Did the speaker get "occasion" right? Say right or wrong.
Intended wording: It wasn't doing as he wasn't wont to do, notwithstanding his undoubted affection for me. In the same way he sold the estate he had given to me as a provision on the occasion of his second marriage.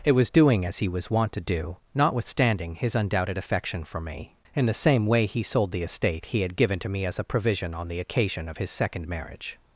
right